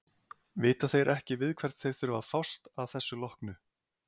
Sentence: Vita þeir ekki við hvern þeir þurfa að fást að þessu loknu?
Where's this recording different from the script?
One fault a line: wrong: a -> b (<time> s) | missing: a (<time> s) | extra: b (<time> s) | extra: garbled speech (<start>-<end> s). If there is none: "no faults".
no faults